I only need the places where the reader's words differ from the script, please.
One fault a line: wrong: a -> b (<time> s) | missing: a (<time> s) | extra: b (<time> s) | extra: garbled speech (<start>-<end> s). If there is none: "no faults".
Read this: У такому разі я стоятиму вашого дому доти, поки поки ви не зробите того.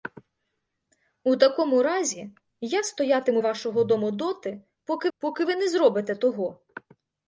no faults